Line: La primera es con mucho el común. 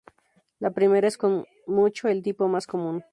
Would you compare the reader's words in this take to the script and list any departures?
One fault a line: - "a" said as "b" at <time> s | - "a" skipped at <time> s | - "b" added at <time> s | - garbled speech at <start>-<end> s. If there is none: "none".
- "tipo más" added at 2.2 s